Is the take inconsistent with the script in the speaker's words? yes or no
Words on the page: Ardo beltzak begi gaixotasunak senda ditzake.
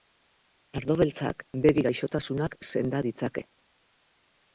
no